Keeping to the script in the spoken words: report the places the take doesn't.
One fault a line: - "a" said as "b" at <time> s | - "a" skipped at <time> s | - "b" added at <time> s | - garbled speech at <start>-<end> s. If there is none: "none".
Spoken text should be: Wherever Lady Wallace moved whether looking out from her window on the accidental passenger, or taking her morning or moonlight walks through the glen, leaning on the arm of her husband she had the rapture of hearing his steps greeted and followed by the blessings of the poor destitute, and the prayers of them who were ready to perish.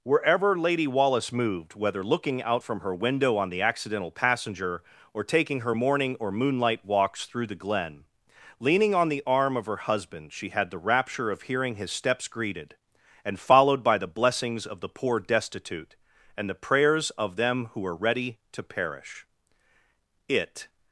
- "It" added at 20.3 s